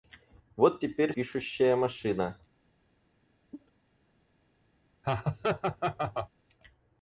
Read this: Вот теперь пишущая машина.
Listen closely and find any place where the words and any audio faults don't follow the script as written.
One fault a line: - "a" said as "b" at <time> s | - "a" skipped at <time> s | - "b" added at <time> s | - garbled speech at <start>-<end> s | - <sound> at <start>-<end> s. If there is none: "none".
- cough at 3.5-3.7 s
- laugh at 5.0-6.3 s